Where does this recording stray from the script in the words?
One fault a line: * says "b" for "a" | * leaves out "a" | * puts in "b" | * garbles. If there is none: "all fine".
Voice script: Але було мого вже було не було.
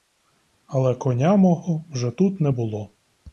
* says "коня" for "було"
* says "тут" for "було"